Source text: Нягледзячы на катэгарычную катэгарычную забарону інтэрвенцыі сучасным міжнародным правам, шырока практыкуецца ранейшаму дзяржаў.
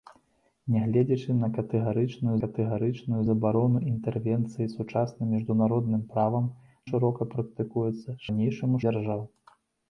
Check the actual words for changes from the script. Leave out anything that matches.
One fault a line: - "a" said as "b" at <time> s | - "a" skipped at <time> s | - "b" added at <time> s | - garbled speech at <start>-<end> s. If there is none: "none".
none